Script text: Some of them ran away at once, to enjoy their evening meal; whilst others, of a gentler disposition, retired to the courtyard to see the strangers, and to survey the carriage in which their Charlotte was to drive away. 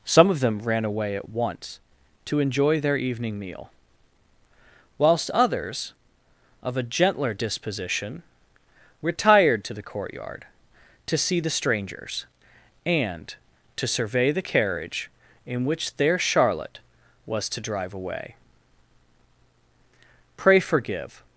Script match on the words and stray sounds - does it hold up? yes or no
no